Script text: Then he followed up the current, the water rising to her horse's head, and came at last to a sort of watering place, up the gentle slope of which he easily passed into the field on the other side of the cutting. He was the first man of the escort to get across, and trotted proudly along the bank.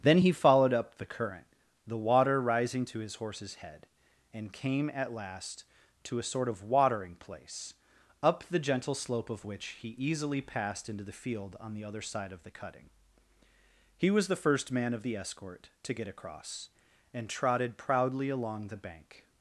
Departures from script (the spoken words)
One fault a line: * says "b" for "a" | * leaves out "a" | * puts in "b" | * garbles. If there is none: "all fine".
* says "his" for "her"